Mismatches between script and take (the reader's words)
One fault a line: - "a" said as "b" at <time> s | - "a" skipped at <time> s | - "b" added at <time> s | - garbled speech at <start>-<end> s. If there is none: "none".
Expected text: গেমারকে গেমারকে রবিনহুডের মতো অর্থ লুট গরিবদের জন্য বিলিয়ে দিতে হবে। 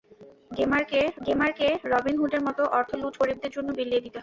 none